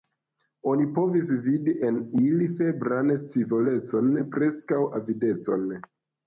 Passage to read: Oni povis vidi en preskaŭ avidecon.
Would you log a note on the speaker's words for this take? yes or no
yes